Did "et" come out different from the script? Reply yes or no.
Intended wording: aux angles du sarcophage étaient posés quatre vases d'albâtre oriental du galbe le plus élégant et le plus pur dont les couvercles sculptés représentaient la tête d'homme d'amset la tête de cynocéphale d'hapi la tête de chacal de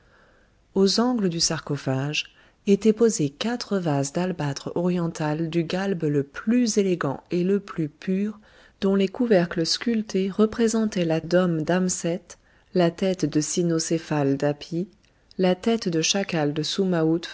no